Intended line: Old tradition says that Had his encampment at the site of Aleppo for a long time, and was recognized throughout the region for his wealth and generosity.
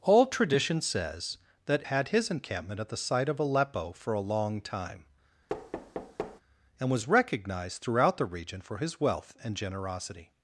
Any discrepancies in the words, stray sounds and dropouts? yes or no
yes